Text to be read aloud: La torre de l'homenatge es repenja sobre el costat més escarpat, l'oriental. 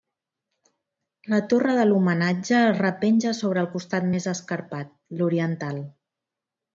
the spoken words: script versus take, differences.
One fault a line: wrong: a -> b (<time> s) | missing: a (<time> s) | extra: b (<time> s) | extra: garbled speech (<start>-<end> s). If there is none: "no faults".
no faults